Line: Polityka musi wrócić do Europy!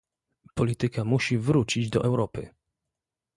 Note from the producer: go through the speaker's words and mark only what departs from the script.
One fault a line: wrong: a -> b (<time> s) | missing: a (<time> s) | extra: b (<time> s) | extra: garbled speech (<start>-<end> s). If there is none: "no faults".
no faults